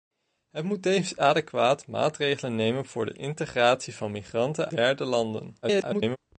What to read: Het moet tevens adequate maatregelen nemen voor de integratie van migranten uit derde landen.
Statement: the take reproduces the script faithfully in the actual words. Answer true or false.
false